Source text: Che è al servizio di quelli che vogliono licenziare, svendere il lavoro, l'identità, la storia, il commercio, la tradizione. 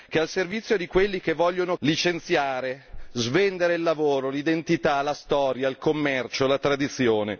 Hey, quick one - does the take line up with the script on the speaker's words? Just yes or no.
yes